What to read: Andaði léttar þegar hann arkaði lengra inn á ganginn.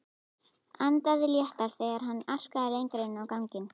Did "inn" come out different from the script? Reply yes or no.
no